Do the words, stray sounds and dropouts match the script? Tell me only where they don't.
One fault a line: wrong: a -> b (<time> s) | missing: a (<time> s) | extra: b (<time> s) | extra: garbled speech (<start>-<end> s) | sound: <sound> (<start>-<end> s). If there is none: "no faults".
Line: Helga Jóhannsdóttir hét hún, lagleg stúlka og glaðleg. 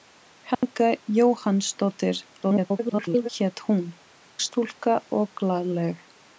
sound: dropout (0.5-0.6 s)
extra: garbled speech (2.4-3.3 s)
missing: lagleg (3.9 s)